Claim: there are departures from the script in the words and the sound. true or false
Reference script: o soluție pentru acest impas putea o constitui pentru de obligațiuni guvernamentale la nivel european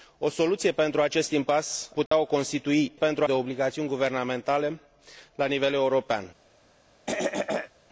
true